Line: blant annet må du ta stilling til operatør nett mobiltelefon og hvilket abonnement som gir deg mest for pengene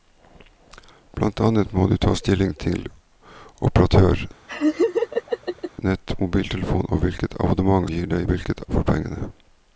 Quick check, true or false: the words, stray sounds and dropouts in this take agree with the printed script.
false